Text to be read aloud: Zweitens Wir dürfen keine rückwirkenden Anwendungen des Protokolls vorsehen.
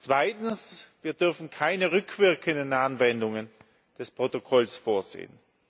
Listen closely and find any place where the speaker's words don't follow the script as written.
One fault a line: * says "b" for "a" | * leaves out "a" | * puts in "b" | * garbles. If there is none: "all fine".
all fine